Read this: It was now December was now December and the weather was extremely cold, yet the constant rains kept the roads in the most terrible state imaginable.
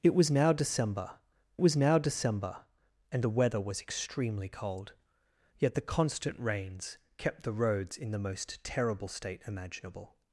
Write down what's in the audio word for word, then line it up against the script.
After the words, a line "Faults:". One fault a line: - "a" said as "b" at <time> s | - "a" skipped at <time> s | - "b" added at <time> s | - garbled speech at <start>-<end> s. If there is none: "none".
It was now December was now December and the weather was extremely cold, yet the constant rains kept the roads in the most terrible state imaginable.
Faults:
none